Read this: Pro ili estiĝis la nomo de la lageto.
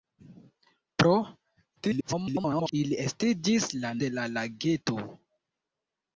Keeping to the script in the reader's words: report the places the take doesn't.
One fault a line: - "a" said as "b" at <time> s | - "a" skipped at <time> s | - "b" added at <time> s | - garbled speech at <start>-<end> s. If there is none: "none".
- garbled speech at 1.8-2.7 s
- "nomo" skipped at 3.9 s